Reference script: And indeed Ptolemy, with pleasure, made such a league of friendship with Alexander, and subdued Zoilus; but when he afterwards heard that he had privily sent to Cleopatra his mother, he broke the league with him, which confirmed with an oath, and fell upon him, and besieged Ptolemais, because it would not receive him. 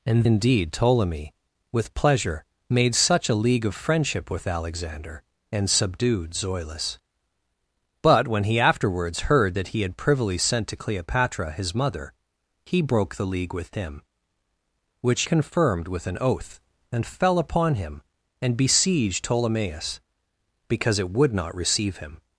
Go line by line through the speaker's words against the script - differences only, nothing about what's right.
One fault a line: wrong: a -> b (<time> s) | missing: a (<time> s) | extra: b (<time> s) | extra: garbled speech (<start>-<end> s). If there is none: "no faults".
no faults